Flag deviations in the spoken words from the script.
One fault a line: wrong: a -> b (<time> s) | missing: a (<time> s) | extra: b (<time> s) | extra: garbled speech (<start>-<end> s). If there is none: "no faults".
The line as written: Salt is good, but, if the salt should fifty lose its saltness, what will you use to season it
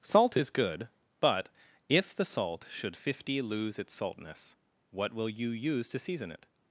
no faults